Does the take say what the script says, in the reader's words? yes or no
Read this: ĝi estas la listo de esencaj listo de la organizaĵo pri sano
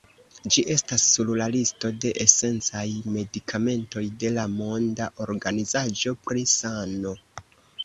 no